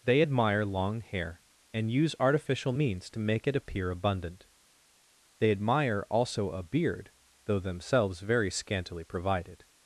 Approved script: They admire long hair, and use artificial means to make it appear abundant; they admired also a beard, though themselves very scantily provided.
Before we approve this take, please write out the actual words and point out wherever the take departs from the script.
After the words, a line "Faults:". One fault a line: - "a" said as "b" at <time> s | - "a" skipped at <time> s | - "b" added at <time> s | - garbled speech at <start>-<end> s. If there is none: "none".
They admire long hair, and use artificial means to make it appear abundant; they admire also a beard, though themselves very scantily provided.
Faults:
- "admired" said as "admire" at 5.5 s